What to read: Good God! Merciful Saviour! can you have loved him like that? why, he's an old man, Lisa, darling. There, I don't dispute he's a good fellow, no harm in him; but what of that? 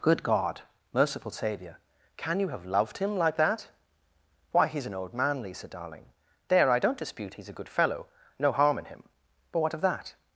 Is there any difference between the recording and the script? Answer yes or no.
no